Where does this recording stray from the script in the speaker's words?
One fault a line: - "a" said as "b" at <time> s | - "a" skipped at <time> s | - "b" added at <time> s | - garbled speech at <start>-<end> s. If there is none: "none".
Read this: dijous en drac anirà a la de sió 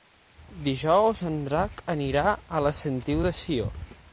- "sentiu" added at 2.8 s